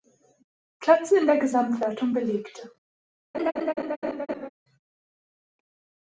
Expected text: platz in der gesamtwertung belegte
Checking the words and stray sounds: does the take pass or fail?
fail